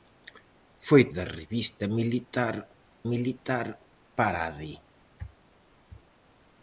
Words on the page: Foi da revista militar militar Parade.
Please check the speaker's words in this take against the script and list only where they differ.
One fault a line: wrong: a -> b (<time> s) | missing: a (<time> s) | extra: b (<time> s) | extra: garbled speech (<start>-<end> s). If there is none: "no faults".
no faults